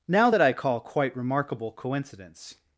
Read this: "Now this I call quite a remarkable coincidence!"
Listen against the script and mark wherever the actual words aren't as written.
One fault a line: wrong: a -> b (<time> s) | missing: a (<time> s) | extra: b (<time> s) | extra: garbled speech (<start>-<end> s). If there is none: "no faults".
wrong: this -> that (0.3 s)
missing: a (1.2 s)